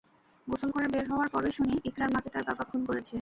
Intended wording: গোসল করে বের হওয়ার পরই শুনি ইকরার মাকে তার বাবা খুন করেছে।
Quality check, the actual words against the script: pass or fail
pass